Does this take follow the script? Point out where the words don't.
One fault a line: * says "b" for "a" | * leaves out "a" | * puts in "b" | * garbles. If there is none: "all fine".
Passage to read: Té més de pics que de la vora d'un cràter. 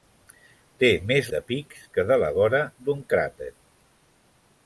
all fine